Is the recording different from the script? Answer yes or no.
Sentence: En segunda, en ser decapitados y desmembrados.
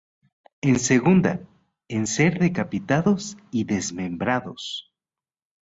no